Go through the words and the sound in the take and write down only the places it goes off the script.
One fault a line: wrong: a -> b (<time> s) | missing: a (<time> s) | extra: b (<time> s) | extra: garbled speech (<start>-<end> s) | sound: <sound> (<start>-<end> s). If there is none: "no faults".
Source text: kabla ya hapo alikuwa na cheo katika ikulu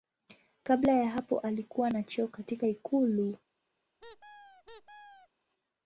sound: squeak (4.0-5.3 s)